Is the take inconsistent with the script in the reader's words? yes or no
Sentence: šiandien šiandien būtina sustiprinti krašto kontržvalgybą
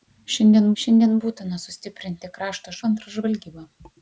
no